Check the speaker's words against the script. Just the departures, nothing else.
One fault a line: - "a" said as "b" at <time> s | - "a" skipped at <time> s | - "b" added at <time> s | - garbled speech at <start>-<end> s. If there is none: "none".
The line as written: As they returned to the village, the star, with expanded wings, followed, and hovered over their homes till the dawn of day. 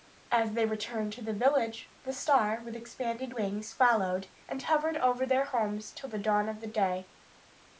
none